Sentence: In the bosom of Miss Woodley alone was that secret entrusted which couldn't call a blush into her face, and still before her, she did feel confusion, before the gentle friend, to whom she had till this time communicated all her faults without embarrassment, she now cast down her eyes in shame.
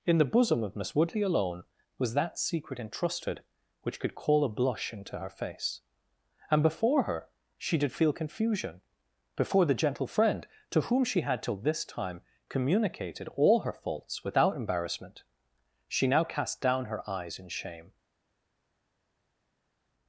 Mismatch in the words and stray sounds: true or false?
true